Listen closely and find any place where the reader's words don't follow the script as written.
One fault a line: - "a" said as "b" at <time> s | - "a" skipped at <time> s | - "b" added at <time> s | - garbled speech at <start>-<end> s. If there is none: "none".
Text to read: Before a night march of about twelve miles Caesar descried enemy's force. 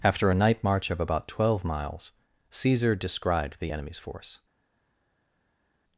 - "Before" said as "After" at 0.0 s
- "the" added at 3.6 s